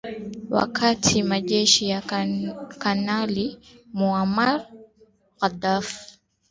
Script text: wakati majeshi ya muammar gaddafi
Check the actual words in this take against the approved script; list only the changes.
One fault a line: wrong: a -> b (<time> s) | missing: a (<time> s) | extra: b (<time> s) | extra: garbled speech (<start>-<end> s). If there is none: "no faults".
extra: kanali (2.8 s)